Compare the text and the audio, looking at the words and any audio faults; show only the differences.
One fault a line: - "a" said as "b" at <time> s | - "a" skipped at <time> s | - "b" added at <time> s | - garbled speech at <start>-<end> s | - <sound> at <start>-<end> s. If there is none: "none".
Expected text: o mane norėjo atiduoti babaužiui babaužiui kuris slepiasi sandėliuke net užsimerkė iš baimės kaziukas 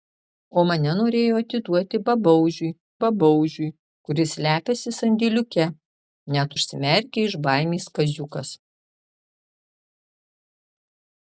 none